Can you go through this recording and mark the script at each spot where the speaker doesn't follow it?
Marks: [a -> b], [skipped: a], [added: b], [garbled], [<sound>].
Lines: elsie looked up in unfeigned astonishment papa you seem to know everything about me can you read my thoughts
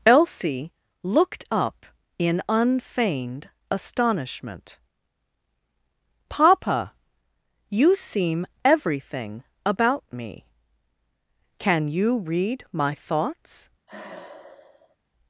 elsie looked up in unfeigned astonishment papa you seem [skipped: to know] everything about me can you read my thoughts [sigh]